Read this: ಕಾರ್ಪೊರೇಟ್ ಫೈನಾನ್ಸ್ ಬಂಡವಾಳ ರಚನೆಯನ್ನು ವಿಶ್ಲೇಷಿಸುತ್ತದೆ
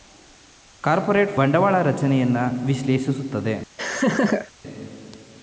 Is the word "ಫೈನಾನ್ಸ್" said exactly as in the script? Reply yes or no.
no